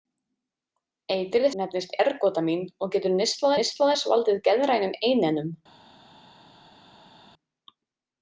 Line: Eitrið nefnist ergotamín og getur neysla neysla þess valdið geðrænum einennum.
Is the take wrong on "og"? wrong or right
right